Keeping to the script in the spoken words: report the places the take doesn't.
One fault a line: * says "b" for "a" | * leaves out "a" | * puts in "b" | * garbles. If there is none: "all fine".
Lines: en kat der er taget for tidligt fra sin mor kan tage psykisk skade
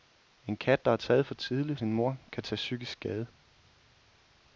* leaves out "fra"